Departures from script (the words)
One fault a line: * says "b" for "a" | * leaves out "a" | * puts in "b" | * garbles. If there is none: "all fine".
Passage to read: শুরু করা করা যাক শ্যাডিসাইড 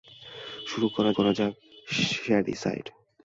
all fine